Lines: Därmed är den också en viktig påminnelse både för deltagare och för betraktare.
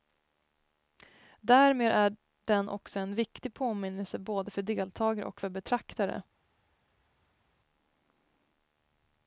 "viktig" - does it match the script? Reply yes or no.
yes